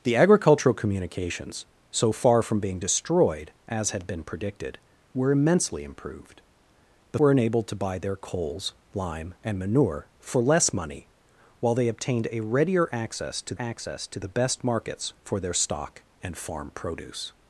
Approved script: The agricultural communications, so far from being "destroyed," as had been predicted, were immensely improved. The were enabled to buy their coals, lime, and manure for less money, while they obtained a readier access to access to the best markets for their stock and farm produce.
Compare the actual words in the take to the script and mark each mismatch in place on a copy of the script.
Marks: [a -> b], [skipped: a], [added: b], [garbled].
The agricultural communications, so far from being "destroyed," as had been predicted, were immensely improved. The were enabled to buy their coals, lime, and manure for less money, while they obtained a readier access to access to the best markets for their stock and farm produce.